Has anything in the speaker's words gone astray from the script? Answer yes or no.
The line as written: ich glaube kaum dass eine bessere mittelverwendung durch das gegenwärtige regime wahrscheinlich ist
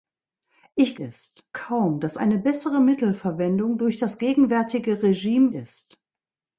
yes